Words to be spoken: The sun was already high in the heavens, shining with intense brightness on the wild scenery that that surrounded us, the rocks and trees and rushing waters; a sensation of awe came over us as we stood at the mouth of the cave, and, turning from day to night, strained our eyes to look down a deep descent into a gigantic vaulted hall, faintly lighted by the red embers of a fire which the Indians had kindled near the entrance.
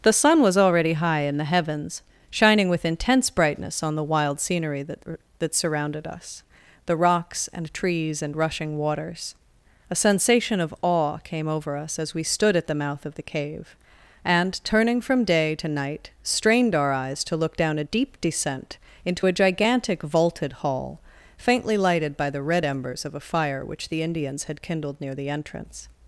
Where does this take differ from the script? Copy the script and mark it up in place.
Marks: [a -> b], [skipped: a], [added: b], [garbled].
The sun was already high in the heavens, shining with intense brightness on the wild scenery that that surrounded us, the rocks and trees and rushing waters; a sensation of awe came over us as we stood at the mouth of the cave, and, turning from day to night, strained our eyes to look down a deep descent into a gigantic vaulted hall, faintly lighted by the red embers of a fire which the Indians had kindled near the entrance.